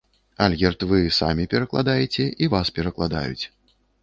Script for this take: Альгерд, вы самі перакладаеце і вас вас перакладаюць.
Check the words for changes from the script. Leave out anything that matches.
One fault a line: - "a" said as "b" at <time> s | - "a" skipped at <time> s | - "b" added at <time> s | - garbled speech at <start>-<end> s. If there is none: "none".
- "вас" skipped at 2.7 s